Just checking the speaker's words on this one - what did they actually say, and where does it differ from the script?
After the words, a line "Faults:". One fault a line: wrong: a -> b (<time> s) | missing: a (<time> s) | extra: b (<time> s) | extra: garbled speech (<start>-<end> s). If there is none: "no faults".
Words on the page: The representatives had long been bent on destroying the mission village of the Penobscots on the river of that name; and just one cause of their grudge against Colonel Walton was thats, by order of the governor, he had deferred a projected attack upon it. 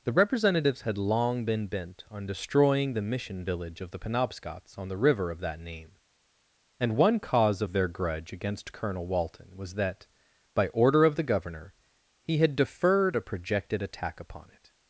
The representatives had long been bent on destroying the mission village of the Penobscots on the river of that name; and one cause of their grudge against Colonel Walton was that, by order of the governor, he had deferred a projected attack upon it.
Faults:
missing: just (7.0 s)
wrong: thats -> that (9.8 s)